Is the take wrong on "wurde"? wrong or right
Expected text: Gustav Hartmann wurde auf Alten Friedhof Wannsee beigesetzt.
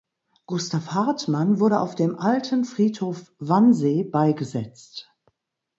right